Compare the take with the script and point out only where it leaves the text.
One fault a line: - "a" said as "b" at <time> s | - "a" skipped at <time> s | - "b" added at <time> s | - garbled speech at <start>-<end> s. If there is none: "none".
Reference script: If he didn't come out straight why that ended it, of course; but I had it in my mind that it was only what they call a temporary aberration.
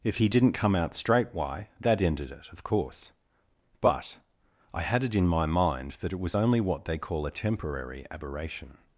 none